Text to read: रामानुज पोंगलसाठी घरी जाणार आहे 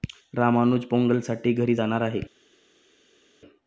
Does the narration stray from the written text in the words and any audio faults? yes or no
no